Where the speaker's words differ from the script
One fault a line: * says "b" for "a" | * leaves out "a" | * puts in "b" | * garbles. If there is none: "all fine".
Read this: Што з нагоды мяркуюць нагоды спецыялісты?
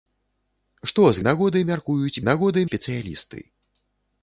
all fine